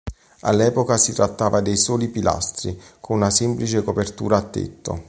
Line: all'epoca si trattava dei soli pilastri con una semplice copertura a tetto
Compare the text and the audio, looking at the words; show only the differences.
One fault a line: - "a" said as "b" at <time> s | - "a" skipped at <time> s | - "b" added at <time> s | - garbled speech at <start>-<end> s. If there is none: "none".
none